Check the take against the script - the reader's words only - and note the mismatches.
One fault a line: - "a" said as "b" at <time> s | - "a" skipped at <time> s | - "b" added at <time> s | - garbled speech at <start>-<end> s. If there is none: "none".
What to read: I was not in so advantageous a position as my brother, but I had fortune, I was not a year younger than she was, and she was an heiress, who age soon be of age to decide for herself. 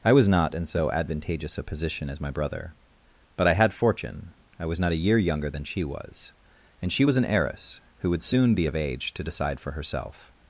- "age" said as "would" at 8.1 s